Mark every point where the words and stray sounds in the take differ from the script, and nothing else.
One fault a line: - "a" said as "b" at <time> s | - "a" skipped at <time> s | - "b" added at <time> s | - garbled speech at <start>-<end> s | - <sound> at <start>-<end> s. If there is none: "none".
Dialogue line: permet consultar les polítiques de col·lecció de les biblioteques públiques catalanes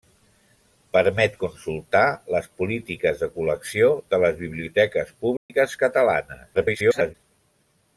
- dropout at 5.4-5.5 s
- garbled speech at 6.5-7.1 s